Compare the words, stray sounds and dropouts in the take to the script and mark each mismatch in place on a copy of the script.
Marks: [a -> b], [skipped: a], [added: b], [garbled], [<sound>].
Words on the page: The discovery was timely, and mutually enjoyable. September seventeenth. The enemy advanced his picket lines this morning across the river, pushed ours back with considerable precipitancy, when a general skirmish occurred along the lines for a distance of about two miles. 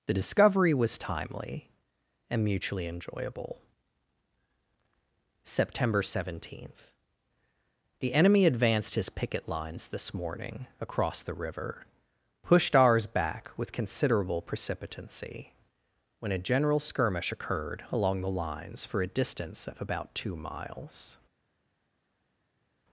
The discovery was timely, and mutually enjoyable. September seventeenth. The enemy advanced his picket lines this morning across the river, pushed ours back with considerable precipitancy, when a general skirmish occurred along the lines for a distance of about two miles.